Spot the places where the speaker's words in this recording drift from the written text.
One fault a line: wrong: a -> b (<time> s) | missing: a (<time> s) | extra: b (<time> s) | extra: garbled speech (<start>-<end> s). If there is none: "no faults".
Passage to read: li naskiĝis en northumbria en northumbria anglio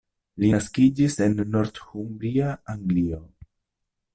missing: en northumbria (2.5 s)